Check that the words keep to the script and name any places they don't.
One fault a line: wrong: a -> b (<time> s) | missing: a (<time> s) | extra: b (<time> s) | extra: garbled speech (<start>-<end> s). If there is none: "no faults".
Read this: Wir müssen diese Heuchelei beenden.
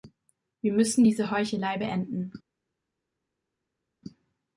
no faults